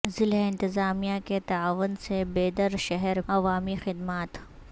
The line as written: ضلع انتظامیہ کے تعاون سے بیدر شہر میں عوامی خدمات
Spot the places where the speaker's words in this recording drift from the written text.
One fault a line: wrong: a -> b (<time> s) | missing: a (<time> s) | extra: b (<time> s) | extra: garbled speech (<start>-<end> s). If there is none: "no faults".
missing: میں (3.2 s)